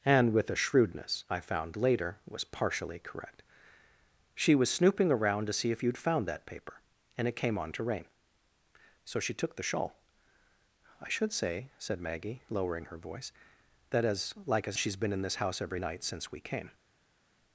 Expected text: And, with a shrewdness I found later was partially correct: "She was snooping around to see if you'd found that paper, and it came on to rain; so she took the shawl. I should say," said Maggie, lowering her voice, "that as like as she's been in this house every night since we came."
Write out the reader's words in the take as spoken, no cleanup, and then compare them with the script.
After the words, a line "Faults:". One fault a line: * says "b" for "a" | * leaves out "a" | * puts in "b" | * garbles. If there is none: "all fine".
And, with a shrewdness I found later was partially correct: "She was snooping around to see if you'd found that paper, and it came on to rain; so she took the shawl. I should say," said Maggie, lowering her voice, "that as like as she's been in this house every night since we came."
Faults:
all fine